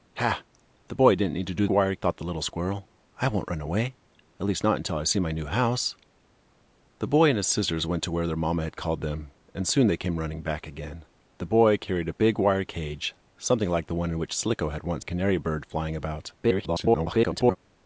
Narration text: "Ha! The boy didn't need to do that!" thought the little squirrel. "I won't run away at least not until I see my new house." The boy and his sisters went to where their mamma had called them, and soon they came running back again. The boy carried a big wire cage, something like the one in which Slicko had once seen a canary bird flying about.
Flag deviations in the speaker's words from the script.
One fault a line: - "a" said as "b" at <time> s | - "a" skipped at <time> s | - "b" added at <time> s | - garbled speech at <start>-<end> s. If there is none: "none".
- "that" said as "wire" at 1.7 s
- "seen" skipped at 15.1 s
- garbled speech at 16.4-17.6 s